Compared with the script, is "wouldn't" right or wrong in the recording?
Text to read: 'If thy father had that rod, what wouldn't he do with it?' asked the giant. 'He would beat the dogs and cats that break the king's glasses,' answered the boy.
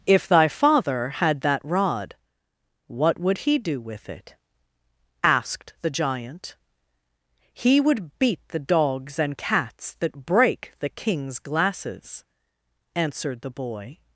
wrong